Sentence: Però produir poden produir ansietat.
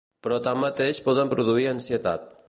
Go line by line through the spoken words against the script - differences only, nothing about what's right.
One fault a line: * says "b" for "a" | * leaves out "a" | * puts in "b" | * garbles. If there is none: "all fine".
* says "tanmateix" for "produir"